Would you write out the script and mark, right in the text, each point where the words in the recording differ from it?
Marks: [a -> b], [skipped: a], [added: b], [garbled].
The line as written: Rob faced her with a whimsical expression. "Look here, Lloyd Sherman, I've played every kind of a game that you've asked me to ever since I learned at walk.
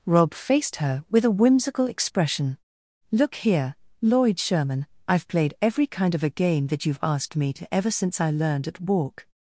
Rob faced her with a whimsical expression. "Look here, Lloyd Sherman, I've played every kind of a game that you've asked me to ever since I learned at walk.